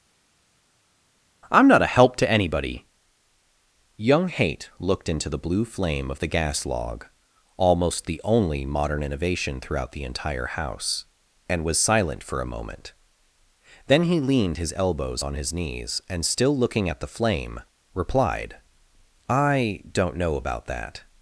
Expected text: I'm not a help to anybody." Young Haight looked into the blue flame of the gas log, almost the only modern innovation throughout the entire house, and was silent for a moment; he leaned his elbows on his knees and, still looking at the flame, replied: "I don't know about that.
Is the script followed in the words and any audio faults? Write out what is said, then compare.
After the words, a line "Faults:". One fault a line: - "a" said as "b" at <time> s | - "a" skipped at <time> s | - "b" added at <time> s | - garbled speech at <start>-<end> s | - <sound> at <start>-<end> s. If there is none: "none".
I'm not a help to anybody." Young Haight looked into the blue flame of the gas log, almost the only modern innovation throughout the entire house, and was silent for a moment; then he leaned his elbows on his knees and, still looking at the flame, replied: "I don't know about that.
Faults:
- "then" added at 13.9 s